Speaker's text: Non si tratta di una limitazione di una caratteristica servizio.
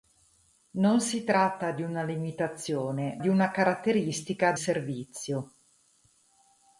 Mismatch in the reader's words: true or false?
false